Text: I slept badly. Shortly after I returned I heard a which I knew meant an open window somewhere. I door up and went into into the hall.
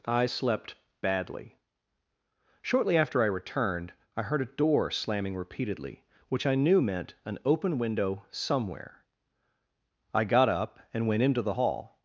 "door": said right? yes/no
no